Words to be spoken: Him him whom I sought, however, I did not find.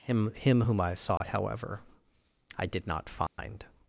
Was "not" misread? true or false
false